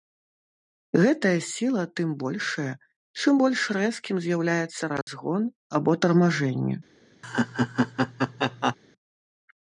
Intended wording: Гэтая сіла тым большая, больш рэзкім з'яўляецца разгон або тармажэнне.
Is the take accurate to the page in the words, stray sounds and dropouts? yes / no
no